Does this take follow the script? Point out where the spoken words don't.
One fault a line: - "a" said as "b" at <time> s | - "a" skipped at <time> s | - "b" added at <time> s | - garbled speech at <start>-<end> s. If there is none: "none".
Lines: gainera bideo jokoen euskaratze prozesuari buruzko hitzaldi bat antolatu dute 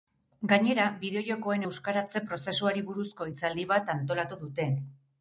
none